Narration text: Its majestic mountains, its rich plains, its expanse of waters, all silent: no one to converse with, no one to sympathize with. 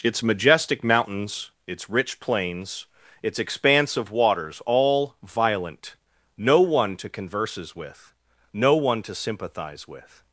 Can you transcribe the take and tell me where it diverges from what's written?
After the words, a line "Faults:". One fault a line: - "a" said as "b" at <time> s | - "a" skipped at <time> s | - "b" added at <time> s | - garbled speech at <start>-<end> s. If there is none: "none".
Its majestic mountains, its rich plains, its expanse of waters, all violent: no one to converses with, no one to sympathize with.
Faults:
- "silent" said as "violent" at 5.2 s
- "converse" said as "converses" at 7.1 s